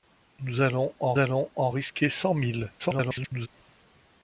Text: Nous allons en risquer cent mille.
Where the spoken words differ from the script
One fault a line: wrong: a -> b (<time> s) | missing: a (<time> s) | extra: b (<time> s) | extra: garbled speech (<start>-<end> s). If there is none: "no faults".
extra: allons en (1.2 s)
extra: garbled speech (2.8-3.5 s)